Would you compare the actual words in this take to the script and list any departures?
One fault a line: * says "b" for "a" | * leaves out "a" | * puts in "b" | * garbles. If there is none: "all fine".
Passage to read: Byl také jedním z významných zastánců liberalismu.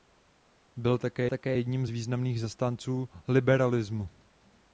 * puts in "také"